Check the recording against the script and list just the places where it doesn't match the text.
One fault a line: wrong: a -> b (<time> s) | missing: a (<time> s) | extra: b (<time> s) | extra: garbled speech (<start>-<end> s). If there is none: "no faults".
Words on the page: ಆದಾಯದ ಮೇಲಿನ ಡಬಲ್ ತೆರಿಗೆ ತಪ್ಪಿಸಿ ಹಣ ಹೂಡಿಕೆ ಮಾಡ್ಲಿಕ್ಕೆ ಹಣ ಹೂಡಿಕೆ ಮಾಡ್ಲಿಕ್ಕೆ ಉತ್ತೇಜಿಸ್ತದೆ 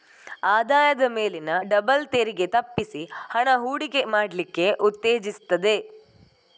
missing: ಹಣ ಹೂಡಿಕೆ ಮಾಡ್ಲಿಕ್ಕೆ (4.7 s)